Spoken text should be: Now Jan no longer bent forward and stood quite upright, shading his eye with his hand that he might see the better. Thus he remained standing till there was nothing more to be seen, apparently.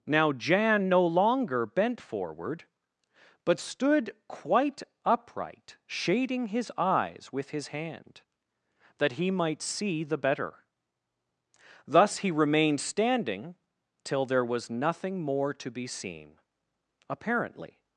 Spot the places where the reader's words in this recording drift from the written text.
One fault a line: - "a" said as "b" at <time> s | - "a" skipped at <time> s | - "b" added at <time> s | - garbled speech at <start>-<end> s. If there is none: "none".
- "and" said as "but" at 3.4 s
- "eye" said as "eyes" at 6.8 s